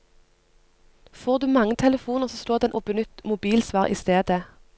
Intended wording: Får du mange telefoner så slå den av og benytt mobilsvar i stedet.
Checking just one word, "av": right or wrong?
wrong